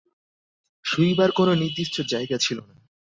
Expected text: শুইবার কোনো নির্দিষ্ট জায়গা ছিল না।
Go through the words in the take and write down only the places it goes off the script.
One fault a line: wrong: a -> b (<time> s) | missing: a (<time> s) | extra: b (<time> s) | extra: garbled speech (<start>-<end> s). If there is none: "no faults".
no faults